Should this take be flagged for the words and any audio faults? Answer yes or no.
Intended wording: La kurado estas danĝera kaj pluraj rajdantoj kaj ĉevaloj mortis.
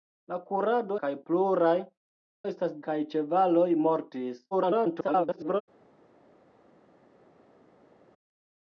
yes